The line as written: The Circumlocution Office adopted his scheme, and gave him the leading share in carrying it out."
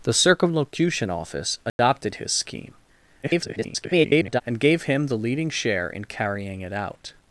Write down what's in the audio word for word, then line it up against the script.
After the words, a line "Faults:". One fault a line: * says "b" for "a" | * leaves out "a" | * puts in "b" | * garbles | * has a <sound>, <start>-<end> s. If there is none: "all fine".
The Circumlocution Office adopted his scheme, [garbled] and gave him the leading share in carrying it out."
Faults:
* has a dropout, 1.7-1.8 s
* garbles